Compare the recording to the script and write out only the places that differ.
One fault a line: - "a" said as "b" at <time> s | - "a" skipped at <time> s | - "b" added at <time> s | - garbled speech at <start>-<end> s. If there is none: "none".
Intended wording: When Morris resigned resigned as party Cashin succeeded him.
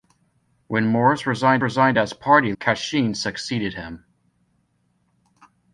none